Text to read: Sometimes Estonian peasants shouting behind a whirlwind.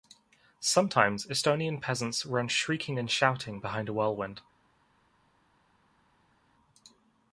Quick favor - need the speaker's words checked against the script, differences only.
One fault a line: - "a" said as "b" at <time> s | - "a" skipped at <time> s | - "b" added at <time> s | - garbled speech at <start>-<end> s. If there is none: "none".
- "run shrieking and" added at 2.2 s